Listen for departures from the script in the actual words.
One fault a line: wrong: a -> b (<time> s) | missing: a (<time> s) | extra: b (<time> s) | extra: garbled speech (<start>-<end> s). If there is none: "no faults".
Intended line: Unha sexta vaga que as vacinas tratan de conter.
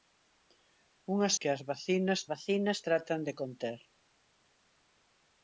missing: sexta vaga (1.3 s)
extra: vacinas (2.3 s)